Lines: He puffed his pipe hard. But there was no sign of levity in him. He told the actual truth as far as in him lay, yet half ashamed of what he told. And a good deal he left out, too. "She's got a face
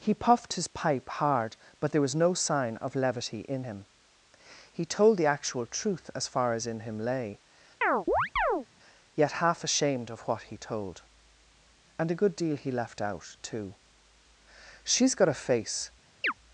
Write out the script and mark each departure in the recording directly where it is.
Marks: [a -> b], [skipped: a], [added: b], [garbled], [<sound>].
He puffed his pipe hard. But there was no sign of levity in him. He told the actual truth as far as in him lay, [chirp] yet half ashamed of what he told. And a good deal he left out, too. "She's got a face [chirp]